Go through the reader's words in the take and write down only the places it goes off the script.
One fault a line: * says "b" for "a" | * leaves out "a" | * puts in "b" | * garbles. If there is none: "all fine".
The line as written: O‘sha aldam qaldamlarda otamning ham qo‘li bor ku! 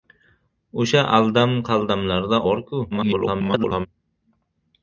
* leaves out "otamning ham qo‘li"
* garbles